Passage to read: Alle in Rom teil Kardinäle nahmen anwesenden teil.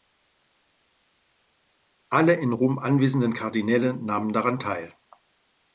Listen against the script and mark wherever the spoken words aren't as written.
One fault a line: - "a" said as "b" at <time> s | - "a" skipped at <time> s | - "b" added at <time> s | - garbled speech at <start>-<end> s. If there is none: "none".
- "teil" said as "anwesenden" at 2.8 s
- "anwesenden" said as "daran" at 4.3 s